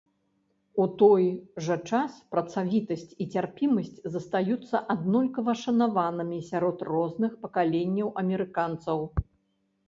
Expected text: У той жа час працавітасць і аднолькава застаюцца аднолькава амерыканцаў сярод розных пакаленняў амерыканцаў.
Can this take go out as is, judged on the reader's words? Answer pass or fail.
fail